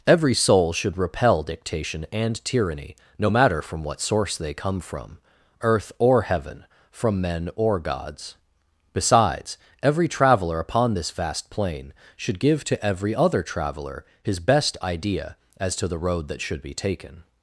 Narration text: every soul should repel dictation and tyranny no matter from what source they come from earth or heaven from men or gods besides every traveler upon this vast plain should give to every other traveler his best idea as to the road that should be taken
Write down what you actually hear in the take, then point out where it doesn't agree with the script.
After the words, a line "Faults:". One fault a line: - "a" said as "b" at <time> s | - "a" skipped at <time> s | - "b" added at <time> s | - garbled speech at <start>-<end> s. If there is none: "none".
every soul should repel dictation and tyranny no matter from what source they come from earth or heaven from men or gods besides every traveler upon this vast plain should give to every other traveler his best idea as to the road that should be taken
Faults:
none